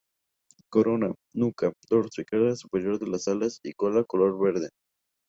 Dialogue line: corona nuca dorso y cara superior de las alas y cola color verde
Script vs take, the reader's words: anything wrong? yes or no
no